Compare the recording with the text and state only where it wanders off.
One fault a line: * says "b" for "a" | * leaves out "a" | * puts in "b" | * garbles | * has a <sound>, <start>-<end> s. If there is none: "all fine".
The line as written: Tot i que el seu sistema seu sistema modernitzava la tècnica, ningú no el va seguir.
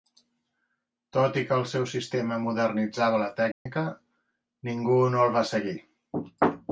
* leaves out "seu sistema"
* has a dropout, 3.5-3.7 s